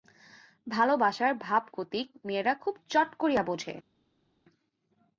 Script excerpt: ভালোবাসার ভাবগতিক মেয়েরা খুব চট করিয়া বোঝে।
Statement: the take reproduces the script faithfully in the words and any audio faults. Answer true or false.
true